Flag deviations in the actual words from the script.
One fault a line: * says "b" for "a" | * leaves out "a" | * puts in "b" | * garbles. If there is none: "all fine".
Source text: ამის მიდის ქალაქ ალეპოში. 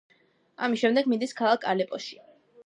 * puts in "შემდეგ"